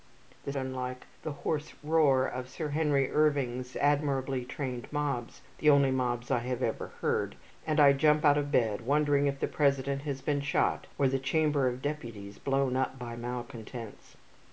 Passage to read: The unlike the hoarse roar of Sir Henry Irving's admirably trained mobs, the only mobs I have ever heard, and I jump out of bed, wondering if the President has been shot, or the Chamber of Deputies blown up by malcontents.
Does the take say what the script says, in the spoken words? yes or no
yes